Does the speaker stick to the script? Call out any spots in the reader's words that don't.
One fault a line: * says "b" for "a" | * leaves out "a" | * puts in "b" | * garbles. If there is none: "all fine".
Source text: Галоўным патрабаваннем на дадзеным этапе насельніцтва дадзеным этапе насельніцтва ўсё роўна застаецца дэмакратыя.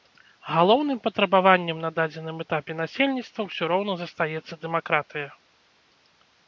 * leaves out "дадзеным этапе насельніцтва"